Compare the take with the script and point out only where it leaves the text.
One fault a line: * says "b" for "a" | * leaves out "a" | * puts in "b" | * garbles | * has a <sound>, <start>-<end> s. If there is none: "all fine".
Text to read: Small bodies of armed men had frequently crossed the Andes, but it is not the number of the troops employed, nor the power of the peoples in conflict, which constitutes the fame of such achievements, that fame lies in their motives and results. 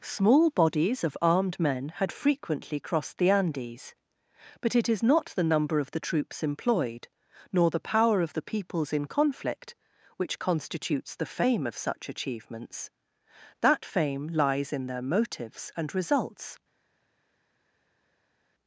all fine